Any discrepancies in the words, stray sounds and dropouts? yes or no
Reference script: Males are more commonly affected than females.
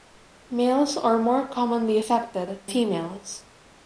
yes